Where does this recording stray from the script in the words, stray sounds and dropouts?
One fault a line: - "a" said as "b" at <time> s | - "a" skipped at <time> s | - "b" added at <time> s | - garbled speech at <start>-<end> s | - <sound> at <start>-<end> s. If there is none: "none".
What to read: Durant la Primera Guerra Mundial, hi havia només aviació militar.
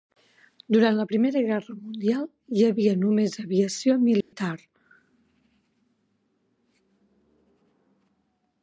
- dropout at 4.2-4.3 s